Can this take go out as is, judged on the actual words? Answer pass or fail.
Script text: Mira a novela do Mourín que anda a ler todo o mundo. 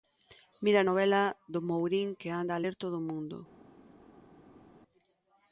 pass